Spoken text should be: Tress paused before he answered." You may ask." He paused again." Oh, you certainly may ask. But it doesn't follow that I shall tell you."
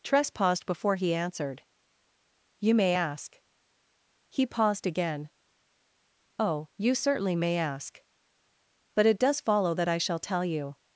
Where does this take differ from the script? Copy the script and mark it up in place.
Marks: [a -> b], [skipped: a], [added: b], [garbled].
Tress paused before he answered." You may ask." He paused again." Oh, you certainly may ask. But it [doesn't -> does] follow that I shall tell you."